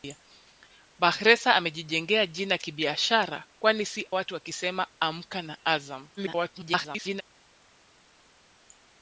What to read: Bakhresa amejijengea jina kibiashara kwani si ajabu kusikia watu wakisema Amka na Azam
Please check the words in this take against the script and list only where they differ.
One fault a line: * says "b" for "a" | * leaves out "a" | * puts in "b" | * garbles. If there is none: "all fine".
* leaves out "ajabu kusikia"
* garbles